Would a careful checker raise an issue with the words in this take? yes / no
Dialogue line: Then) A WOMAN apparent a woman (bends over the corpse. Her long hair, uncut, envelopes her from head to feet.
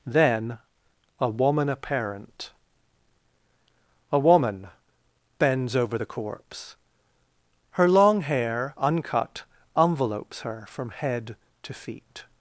no